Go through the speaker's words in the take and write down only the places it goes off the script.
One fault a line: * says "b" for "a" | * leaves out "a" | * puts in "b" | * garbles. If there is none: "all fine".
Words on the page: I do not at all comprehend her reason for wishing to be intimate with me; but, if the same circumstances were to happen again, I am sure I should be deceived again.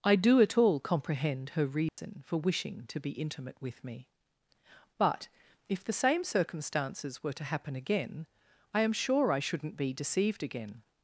* leaves out "not"
* says "shouldn't" for "should"